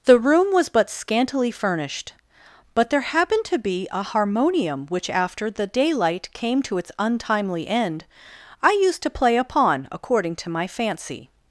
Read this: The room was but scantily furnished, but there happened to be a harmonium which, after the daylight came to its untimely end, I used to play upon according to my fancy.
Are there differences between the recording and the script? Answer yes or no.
no